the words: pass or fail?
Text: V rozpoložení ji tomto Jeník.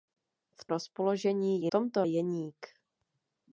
pass